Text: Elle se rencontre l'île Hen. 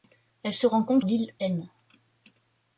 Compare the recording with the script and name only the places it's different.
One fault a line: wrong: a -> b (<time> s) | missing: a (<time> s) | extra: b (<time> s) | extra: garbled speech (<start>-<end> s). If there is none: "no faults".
no faults